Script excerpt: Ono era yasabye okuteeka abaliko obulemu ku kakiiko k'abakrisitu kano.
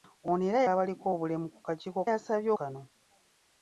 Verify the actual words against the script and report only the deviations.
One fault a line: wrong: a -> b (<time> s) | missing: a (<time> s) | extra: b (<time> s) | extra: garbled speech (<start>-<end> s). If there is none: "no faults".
missing: yasabye okuteeka (0.6 s)
wrong: k'abakrisitu -> yasabye (2.1 s)